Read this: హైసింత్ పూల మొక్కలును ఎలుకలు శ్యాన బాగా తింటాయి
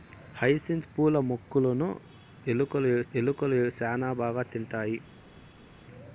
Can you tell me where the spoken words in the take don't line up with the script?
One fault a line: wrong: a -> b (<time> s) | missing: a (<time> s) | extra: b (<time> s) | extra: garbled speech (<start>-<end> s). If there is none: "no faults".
extra: ఎలుకలు (3.1 s)